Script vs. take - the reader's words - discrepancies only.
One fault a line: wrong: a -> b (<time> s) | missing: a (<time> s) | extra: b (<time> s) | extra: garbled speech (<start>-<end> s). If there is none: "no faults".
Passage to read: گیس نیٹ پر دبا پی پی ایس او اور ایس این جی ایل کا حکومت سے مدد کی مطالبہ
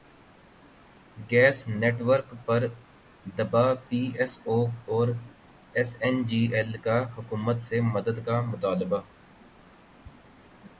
extra: ورک (2.1 s)
missing: پی (4.0 s)
wrong: کی -> کا (8.3 s)